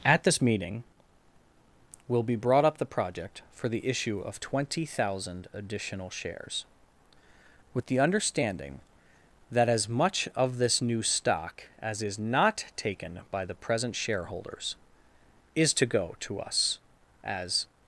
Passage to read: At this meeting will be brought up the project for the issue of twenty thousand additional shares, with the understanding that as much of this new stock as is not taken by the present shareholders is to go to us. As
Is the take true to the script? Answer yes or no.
yes